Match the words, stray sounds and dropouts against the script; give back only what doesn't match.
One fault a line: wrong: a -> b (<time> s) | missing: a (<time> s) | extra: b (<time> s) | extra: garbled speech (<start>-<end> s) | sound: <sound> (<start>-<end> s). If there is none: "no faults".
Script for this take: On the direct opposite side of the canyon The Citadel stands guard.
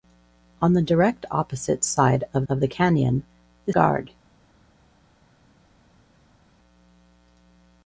extra: of (2.5 s)
missing: Citadel stands (3.7 s)